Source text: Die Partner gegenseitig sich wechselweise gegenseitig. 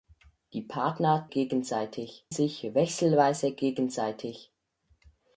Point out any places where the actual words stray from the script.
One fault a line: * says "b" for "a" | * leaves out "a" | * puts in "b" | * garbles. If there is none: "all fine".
all fine